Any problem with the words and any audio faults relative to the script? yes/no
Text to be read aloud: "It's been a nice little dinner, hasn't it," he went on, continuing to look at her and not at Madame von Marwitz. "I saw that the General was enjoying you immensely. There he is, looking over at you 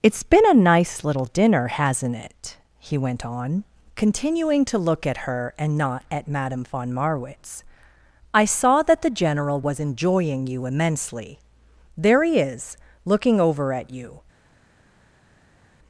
no